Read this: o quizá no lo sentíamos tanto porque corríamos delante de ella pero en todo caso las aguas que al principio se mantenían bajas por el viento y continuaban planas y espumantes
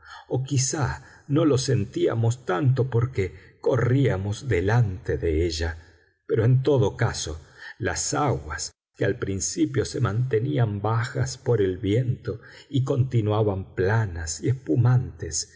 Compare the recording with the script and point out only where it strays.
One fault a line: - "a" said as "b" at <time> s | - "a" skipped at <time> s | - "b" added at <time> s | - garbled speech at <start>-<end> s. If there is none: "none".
none